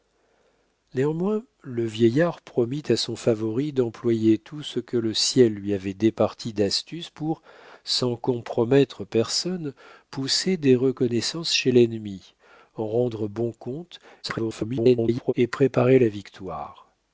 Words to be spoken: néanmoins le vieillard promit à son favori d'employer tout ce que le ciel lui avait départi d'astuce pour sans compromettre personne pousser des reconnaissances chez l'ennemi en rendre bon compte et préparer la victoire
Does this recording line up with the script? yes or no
no